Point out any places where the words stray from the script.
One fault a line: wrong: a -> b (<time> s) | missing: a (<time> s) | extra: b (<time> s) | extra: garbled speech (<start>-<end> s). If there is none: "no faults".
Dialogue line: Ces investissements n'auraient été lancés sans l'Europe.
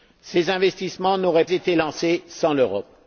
no faults